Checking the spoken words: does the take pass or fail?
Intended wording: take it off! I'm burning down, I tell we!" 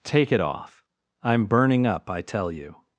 fail